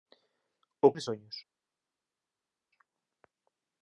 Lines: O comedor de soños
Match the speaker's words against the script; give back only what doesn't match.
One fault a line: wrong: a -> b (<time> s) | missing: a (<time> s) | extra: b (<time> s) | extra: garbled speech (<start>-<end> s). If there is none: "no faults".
missing: comedor (0.9 s)